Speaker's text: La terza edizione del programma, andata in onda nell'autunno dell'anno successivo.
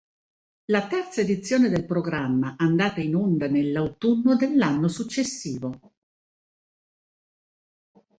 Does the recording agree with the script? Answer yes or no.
yes